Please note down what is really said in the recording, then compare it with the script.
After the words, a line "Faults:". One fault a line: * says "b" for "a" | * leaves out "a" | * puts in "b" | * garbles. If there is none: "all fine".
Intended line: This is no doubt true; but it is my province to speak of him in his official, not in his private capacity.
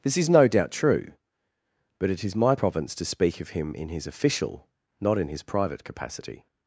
This is no doubt true; but it is my province to speak of him in his official, not in his private capacity.
Faults:
all fine